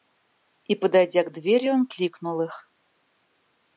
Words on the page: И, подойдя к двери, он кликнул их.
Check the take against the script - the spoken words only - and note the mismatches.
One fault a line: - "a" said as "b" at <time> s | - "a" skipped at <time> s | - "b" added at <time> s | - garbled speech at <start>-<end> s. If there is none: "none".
none